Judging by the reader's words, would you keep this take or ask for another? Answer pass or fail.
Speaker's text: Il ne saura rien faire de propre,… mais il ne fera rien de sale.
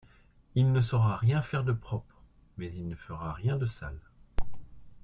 pass